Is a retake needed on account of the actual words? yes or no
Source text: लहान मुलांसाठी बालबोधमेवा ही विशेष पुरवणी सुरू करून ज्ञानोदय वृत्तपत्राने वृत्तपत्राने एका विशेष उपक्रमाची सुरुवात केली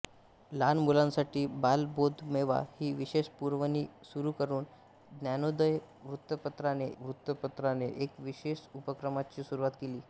no